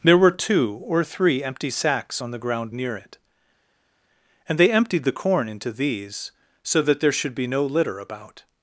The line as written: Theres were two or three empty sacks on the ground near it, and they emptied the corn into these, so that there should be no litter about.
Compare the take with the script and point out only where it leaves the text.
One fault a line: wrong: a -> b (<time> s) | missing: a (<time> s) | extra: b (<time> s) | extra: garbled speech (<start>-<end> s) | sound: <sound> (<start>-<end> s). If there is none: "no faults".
wrong: Theres -> There (0.0 s)